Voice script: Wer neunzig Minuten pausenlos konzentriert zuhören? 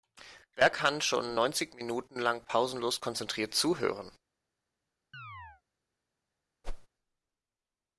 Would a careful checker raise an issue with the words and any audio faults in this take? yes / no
yes